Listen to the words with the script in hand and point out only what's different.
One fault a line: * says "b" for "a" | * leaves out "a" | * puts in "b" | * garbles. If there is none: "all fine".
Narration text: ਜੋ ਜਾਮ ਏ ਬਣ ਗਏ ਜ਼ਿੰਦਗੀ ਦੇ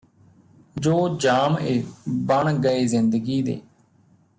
all fine